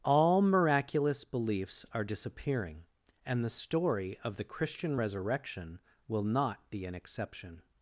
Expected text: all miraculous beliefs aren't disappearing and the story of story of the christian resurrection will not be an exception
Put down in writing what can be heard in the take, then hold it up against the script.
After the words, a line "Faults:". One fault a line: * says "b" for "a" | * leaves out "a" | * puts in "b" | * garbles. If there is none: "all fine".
all miraculous beliefs are disappearing and the story of the christian resurrection will not be an exception
Faults:
* says "are" for "aren't"
* leaves out "story of"